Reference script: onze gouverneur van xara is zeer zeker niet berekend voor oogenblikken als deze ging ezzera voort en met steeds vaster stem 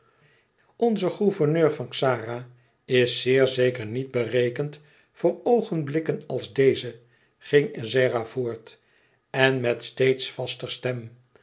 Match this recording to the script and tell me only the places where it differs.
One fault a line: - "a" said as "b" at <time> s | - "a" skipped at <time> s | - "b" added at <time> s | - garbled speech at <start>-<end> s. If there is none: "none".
none